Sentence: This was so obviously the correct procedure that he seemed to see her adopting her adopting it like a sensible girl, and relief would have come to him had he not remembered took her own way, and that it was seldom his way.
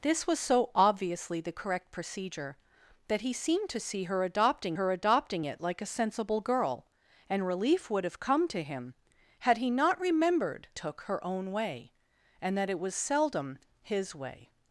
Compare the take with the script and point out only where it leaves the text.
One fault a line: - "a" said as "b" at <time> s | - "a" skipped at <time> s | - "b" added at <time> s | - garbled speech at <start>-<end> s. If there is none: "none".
none